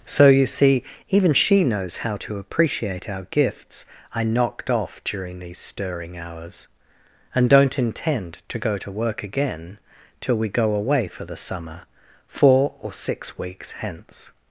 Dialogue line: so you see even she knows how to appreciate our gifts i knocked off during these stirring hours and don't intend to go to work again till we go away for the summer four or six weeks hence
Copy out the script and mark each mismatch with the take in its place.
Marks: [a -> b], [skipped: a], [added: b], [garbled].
so you see even she knows how to appreciate our gifts i knocked off during these stirring hours and don't intend to go to work again till we go away for the summer four or six weeks hence